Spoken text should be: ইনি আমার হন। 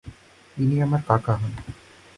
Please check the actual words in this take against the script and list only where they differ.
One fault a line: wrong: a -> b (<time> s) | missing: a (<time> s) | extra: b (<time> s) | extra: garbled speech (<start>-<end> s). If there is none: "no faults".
extra: কাকা (1.1 s)